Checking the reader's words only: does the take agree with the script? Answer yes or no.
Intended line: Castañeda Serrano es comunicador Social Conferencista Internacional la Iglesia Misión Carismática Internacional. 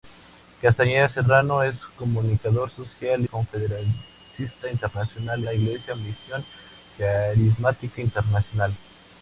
yes